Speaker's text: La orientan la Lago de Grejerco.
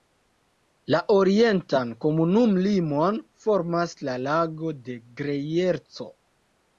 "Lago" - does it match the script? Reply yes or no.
yes